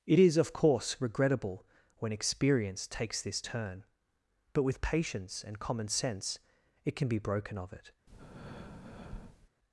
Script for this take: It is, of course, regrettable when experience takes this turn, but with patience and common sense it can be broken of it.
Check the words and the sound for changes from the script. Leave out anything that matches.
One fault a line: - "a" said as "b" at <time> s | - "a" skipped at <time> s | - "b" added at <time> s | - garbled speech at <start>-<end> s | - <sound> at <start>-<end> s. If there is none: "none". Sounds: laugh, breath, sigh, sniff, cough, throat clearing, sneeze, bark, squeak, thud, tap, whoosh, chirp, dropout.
- breath at 8.1-9.5 s